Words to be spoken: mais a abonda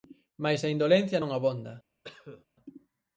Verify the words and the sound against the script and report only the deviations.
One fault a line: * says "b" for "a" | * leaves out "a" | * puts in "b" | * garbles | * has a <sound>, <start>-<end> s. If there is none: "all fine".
* puts in "indolencia non"
* has a cough, 2.0-2.5 s